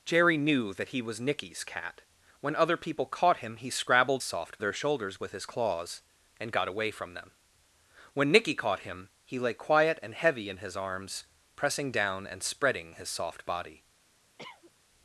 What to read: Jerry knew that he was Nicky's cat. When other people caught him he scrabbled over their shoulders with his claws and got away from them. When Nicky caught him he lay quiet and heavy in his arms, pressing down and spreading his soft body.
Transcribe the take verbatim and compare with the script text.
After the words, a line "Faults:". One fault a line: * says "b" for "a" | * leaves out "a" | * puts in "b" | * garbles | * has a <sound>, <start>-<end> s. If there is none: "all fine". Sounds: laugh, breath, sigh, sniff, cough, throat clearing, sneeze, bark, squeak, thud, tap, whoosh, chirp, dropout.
Jerry knew that he was Nicky's cat. When other people caught him he scrabbled soft their shoulders with his claws and got away from them. When Nicky caught him he lay quiet and heavy in his arms, pressing down and spreading his soft body.
Faults:
* says "soft" for "over"
* has a cough, 14.4-14.7 s